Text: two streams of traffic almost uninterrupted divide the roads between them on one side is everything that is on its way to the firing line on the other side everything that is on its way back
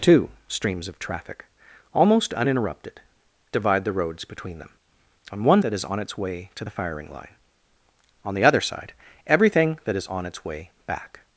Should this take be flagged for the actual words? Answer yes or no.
yes